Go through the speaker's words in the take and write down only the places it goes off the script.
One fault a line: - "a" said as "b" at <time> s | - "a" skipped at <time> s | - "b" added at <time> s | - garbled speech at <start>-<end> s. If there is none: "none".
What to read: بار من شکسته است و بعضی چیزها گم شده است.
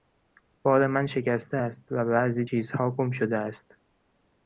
none